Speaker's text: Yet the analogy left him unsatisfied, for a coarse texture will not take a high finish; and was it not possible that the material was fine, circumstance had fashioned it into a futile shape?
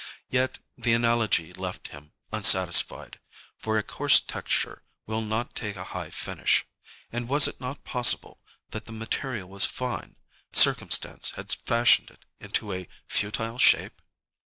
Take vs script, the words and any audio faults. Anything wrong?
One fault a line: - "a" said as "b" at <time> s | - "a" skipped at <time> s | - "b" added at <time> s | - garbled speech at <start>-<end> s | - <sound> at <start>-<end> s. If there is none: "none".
none